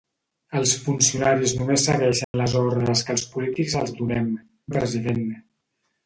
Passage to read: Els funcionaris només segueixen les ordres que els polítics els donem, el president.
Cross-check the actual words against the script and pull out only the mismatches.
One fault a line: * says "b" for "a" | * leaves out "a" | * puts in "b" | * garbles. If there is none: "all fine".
all fine